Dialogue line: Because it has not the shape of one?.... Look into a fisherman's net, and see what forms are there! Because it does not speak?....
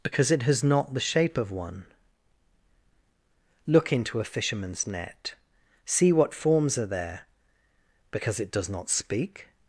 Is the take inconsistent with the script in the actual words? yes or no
yes